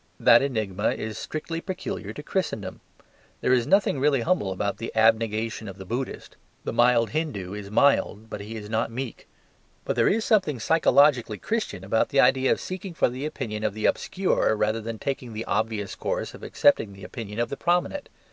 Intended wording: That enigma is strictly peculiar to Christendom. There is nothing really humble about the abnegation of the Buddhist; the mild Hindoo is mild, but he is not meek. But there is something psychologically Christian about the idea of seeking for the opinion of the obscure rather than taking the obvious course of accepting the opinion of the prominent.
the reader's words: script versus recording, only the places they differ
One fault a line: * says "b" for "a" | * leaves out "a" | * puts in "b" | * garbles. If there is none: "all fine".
all fine